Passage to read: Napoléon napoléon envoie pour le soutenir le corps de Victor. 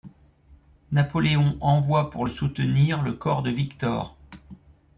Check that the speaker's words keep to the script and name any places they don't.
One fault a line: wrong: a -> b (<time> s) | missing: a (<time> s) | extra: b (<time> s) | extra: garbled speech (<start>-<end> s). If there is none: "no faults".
missing: napoléon (1.6 s)